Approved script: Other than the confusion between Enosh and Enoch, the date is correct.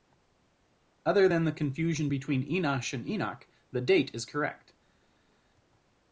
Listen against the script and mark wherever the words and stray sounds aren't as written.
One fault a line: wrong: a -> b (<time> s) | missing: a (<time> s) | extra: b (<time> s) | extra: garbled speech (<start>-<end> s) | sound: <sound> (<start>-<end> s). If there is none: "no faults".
no faults